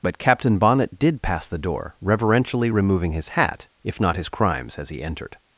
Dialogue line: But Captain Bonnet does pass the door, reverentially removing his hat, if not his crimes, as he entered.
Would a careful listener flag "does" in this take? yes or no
yes